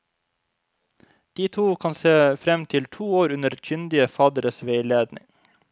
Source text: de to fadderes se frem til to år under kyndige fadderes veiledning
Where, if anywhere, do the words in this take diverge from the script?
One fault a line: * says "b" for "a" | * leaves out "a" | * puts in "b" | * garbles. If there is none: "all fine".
* says "kan" for "fadderes"